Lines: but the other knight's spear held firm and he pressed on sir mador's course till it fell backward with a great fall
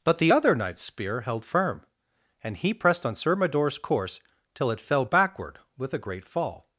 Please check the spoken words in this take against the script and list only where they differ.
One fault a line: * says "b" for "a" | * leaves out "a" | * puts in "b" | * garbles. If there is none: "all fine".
all fine